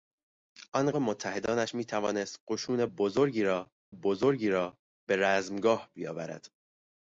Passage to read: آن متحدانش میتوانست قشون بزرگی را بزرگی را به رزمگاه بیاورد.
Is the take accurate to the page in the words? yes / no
yes